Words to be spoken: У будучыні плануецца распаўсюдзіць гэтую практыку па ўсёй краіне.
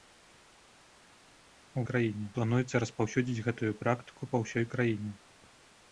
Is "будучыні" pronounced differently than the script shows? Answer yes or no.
yes